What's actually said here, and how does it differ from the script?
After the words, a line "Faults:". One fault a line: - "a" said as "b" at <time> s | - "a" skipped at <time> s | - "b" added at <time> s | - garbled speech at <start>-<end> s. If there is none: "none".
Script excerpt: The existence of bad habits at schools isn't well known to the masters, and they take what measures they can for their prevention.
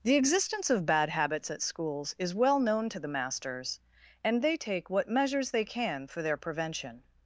The existence of bad habits at schools is well known to the masters, and they take what measures they can for their prevention.
Faults:
- "isn't" said as "is" at 2.2 s